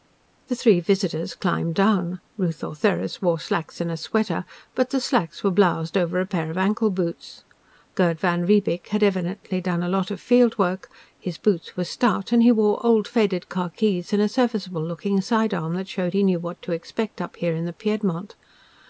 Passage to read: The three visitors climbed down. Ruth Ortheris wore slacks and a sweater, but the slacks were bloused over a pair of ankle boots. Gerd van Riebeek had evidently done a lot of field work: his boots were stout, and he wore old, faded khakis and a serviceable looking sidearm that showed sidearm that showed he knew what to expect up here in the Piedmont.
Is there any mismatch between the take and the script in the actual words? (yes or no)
yes